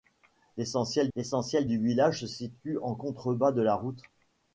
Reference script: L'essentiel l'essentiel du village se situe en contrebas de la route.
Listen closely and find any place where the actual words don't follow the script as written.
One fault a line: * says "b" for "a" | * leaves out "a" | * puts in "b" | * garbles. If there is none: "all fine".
all fine